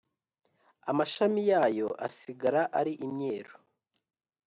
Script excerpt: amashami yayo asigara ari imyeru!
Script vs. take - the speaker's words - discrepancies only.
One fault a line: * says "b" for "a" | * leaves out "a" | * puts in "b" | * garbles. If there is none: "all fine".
all fine